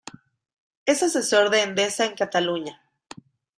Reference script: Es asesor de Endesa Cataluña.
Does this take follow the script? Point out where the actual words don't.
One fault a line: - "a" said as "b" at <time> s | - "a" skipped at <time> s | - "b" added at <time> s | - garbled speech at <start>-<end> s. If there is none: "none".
- "en" added at 2.0 s